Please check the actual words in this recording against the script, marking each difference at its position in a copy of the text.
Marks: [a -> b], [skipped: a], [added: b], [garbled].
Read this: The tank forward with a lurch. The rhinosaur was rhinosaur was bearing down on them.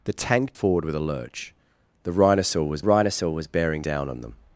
The tank forward with a lurch. The rhinosaur was rhinosaur was bearing down on them.